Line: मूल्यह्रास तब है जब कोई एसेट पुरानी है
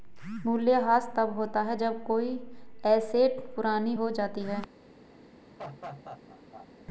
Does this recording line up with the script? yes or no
no